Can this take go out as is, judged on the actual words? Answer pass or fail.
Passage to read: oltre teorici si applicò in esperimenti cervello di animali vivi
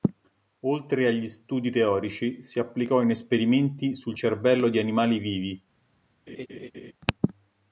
fail